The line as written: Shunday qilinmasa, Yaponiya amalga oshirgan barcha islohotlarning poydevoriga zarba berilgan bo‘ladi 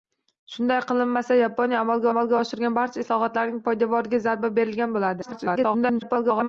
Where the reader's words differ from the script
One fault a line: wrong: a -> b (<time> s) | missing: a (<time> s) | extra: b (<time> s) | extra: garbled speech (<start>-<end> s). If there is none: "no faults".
extra: amalga (2.1 s)
extra: garbled speech (5.2-6.5 s)